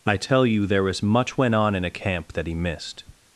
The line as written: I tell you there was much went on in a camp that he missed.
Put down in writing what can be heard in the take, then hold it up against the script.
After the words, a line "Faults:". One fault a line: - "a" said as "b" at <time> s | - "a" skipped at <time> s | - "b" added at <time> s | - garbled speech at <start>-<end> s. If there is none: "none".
I tell you there was much went on in a camp that he missed.
Faults:
none